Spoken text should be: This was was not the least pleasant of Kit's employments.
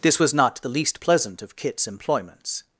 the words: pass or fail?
fail